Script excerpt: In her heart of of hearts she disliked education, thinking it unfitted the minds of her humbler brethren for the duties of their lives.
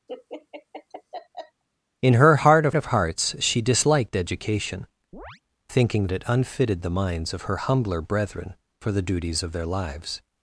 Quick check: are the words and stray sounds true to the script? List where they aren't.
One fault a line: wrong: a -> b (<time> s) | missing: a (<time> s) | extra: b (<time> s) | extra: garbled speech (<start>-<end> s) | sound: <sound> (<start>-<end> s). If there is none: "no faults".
sound: laugh (0.1-1.6 s)
sound: chirp (5.1-5.4 s)